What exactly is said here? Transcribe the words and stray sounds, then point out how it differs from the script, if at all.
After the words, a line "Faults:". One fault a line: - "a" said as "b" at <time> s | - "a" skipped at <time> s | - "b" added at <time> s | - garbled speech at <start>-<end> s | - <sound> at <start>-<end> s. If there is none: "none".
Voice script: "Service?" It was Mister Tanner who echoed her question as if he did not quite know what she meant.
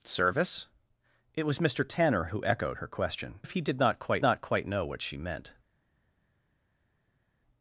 "Service?" It was Mister Tanner who echoed her question if he did not quite not quite know what she meant.
Faults:
- "as" skipped at 3.4 s
- "not quite" added at 4.2 s